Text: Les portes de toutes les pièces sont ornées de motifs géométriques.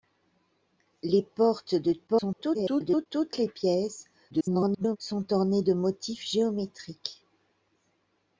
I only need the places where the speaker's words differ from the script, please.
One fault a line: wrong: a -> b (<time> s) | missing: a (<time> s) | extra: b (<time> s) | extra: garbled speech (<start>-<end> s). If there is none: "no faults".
extra: garbled speech (2.1-3.1 s)
extra: garbled speech (4.3-5.0 s)